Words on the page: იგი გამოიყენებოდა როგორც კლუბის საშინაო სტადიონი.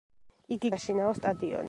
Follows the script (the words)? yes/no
no